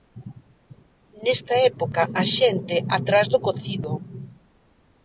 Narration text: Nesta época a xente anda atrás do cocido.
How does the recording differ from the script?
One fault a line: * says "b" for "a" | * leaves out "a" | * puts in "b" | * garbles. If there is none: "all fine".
* leaves out "anda"